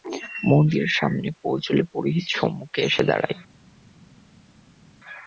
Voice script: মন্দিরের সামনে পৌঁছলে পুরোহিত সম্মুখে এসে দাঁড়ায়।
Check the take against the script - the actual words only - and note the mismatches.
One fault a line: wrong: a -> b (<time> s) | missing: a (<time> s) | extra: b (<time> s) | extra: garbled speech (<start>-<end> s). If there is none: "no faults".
no faults